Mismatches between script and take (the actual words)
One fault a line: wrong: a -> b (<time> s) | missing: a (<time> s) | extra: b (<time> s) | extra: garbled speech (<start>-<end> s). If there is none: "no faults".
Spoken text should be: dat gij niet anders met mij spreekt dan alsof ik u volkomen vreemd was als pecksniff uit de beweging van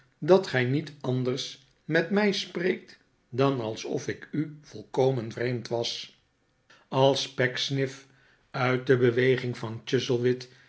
no faults